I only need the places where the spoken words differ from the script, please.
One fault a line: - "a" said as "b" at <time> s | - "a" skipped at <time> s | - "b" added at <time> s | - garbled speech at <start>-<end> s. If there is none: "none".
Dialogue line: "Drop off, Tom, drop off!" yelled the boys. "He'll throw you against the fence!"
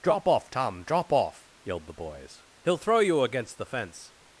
none